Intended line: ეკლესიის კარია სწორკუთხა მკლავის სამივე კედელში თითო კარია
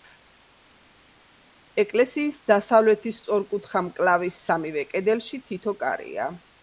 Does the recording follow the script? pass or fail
fail